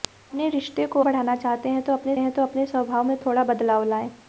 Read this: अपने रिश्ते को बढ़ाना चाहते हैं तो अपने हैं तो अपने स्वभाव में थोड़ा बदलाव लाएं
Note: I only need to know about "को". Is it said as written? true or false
true